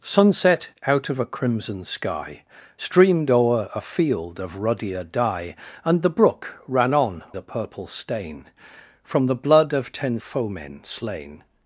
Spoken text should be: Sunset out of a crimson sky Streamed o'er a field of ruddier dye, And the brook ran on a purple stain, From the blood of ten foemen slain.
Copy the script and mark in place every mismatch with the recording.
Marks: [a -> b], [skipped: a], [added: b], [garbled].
Sunset out of a crimson sky Streamed o'er a field of ruddier dye, And the brook ran on a purple stain, From the blood of ten foemen slain.